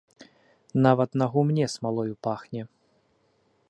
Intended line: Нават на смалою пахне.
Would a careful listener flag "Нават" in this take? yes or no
no